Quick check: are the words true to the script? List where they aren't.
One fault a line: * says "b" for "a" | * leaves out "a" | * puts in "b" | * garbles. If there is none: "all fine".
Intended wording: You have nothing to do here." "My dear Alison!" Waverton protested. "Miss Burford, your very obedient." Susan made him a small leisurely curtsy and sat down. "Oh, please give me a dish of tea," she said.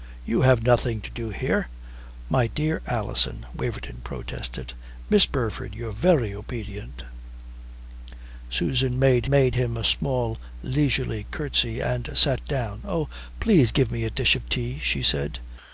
* puts in "made"